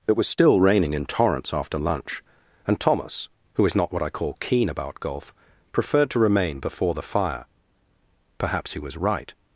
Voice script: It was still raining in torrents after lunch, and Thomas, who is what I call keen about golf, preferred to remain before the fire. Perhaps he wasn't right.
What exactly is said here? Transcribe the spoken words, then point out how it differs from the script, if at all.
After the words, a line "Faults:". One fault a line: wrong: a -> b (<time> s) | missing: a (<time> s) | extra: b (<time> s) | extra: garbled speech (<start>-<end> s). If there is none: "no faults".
It was still raining in torrents after lunch, and Thomas, who is not what I call keen about golf, preferred to remain before the fire. Perhaps he was right.
Faults:
extra: not (3.8 s)
wrong: wasn't -> was (8.8 s)